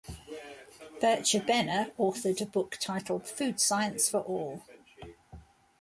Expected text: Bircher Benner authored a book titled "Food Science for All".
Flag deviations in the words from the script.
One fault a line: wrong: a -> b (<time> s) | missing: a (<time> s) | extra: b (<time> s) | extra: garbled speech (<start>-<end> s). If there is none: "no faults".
no faults